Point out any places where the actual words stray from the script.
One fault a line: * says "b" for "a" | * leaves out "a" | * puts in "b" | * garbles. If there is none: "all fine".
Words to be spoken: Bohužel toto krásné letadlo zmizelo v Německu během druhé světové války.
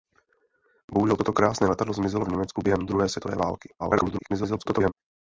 * garbles